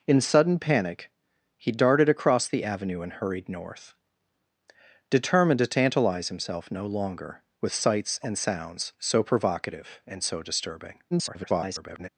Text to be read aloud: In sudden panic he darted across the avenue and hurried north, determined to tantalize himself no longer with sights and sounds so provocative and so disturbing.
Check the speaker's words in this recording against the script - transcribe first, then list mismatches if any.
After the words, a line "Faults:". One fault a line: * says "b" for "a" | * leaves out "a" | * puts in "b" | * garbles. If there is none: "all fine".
In sudden panic he darted across the avenue and hurried north, determined to tantalize himself no longer with sights and sounds so provocative and so disturbing. [garbled]
Faults:
* garbles